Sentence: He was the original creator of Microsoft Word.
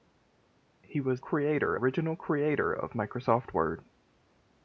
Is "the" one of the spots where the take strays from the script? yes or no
yes